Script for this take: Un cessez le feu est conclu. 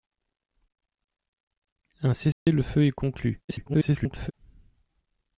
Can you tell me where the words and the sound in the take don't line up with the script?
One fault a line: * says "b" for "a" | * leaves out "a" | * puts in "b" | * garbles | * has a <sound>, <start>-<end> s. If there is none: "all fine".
* has a dropout, 2.3-2.5 s
* garbles